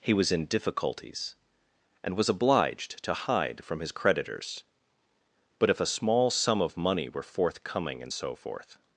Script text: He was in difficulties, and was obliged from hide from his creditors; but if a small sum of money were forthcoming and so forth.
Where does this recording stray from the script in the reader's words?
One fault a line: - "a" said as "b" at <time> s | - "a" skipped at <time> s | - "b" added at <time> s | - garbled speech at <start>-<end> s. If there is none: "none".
- "from" said as "to" at 3.0 s